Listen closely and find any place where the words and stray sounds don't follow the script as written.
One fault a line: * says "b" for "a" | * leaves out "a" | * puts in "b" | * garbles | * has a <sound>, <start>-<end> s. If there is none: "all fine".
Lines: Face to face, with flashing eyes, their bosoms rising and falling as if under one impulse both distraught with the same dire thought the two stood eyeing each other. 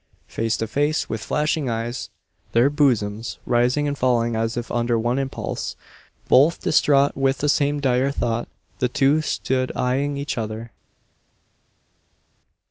all fine